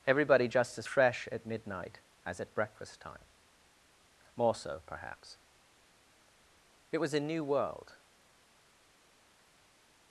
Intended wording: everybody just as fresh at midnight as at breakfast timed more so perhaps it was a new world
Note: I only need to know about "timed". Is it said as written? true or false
false